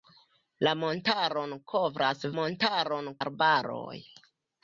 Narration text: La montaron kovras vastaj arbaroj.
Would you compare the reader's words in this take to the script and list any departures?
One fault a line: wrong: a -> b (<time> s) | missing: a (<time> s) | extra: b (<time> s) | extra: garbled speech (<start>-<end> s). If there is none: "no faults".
wrong: vastaj -> montaron (2.4 s)